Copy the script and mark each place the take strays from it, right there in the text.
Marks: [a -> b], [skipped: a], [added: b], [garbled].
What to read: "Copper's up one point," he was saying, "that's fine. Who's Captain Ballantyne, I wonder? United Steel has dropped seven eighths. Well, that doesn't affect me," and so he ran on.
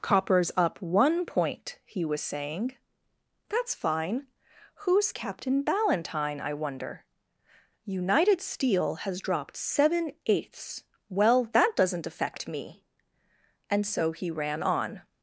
"Copper's up one point," he was saying, "that's fine. Who's Captain Ballantyne, I wonder? United Steel has dropped seven eighths. Well, that doesn't affect me," and so he ran on.